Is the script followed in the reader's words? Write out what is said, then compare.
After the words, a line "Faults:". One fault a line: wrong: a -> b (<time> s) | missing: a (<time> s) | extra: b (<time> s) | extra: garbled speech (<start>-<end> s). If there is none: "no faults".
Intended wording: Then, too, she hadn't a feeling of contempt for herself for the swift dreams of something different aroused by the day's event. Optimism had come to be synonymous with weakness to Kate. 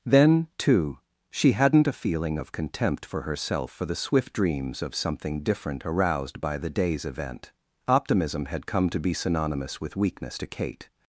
Then, too, she hadn't a feeling of contempt for herself for the swift dreams of something different aroused by the day's event. Optimism had come to be synonymous with weakness to Kate.
Faults:
no faults